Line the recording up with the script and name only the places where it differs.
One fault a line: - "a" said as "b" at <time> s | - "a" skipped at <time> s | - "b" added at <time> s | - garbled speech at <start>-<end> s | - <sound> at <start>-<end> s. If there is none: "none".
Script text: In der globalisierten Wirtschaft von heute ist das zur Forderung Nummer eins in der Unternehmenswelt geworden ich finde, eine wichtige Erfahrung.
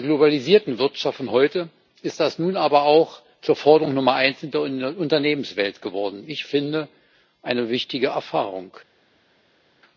- "nun aber auch" added at 2.4 s